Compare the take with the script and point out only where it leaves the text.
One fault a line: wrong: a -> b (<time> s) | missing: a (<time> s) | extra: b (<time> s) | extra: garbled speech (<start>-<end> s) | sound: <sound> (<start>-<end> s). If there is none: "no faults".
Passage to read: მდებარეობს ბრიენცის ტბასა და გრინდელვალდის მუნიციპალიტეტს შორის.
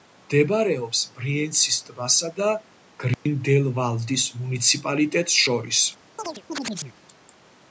sound: dropout (3.1-3.3 s)
sound: chirp (6.2-7.0 s)